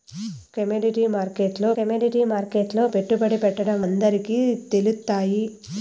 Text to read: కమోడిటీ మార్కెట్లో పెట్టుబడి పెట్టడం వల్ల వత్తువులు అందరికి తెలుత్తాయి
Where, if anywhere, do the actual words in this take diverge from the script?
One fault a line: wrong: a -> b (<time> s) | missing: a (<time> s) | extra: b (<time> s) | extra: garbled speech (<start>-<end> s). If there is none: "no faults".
extra: కమోడిటీ మార్కెట్లో (1.8 s)
missing: వల్ల వత్తువులు (3.8 s)